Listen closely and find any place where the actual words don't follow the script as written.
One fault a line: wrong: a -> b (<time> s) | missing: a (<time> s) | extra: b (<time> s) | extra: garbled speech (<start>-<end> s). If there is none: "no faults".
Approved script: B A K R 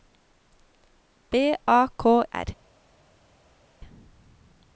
no faults